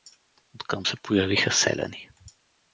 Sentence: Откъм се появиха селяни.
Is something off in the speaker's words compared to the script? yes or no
no